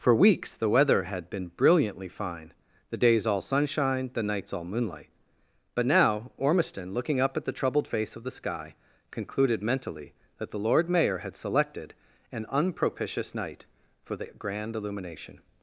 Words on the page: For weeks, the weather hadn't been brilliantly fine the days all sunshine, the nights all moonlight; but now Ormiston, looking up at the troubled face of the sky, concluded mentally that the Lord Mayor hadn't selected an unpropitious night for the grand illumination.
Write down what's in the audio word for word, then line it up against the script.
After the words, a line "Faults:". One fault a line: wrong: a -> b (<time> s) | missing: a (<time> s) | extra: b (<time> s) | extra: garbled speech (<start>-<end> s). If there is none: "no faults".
For weeks, the weather had been brilliantly fine the days all sunshine, the nights all moonlight; but now Ormiston, looking up at the troubled face of the sky, concluded mentally that the Lord Mayor had selected an unpropitious night for the grand illumination.
Faults:
wrong: hadn't -> had (1.0 s)
wrong: hadn't -> had (11.2 s)